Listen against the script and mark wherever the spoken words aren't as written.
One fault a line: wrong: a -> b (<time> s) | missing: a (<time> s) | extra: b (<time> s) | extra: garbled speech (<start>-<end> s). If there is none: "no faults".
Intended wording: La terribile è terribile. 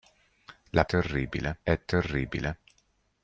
no faults